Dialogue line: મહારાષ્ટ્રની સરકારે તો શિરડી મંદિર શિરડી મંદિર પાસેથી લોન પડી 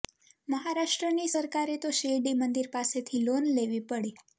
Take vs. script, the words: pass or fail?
fail